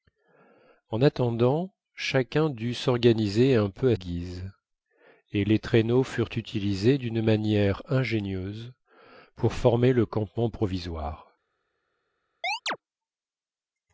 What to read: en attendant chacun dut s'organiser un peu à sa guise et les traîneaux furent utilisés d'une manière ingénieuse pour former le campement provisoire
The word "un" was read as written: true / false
true